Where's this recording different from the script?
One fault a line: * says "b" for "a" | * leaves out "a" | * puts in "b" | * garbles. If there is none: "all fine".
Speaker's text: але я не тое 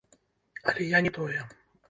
all fine